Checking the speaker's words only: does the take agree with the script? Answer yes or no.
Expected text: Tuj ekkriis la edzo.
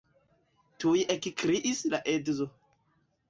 yes